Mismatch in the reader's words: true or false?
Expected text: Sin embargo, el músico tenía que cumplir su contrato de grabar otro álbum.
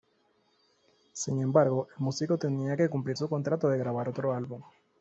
false